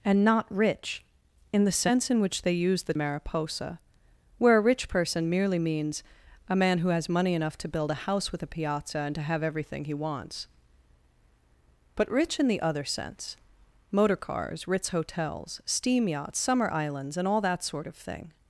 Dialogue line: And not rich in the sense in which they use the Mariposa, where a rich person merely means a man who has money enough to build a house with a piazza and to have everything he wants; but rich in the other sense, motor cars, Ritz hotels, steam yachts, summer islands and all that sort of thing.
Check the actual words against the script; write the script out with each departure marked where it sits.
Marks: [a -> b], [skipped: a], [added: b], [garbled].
And not rich in the sense in which they use the Mariposa, where a rich person merely means a man who has money enough to build a house with a piazza and to have everything he wants; but rich in the other sense, motor cars, Ritz hotels, steam yachts, summer islands and all that sort of thing.